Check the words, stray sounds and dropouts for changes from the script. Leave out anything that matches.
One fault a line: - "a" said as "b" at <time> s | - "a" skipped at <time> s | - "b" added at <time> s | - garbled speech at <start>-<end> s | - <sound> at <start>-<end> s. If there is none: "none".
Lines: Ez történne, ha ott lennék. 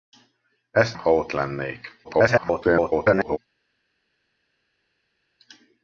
- "történne" skipped at 0.9 s
- garbled speech at 2.0-3.4 s